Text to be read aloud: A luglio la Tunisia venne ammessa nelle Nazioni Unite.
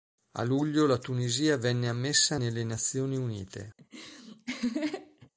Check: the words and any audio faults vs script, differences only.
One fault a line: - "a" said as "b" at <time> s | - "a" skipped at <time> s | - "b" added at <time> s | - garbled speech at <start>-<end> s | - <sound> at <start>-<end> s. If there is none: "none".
- laugh at 3.8-5.3 s